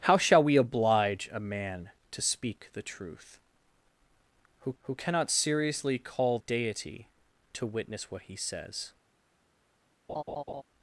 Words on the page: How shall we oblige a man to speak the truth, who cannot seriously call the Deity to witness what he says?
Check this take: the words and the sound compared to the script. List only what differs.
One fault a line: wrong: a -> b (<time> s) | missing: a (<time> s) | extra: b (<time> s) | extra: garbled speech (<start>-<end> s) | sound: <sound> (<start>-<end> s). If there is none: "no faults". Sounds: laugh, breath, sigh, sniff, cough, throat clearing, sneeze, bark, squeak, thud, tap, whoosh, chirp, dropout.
extra: who (4.8 s)
missing: the (6.4 s)
sound: laugh (10.1-10.6 s)